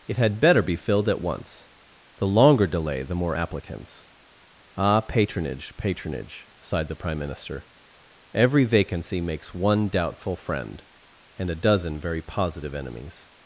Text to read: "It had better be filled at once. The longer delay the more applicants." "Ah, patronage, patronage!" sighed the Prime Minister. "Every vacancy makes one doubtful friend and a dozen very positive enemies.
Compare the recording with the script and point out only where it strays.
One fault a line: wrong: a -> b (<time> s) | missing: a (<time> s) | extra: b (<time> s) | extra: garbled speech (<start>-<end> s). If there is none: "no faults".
no faults